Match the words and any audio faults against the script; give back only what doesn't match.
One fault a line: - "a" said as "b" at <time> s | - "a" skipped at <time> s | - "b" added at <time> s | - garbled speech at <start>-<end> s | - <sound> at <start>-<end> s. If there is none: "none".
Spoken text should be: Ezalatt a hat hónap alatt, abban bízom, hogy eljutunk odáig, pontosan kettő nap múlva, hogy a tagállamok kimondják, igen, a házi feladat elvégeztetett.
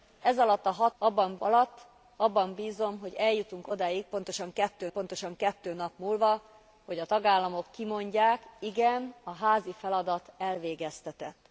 - "hónap" said as "abban" at 1.0 s
- "pontosan kettő" added at 4.9 s